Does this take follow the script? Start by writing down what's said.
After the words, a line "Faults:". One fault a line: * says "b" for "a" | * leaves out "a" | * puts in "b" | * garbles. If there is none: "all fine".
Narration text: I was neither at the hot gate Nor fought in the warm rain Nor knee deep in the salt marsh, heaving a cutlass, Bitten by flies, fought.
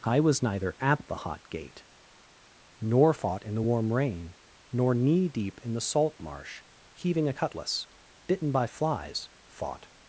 I was neither at the hot gate Nor fought in the warm rain Nor knee deep in the salt marsh, heaving a cutlass, Bitten by flies, fought.
Faults:
all fine